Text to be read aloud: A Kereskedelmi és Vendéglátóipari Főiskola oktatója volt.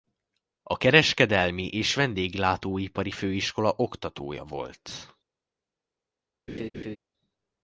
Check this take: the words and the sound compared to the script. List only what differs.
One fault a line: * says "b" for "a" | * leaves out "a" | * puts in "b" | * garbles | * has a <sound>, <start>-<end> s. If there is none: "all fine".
* has a laugh, 6.5-7.0 s